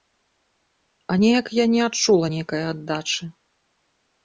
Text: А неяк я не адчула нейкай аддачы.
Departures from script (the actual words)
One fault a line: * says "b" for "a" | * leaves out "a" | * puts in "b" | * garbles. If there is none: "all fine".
all fine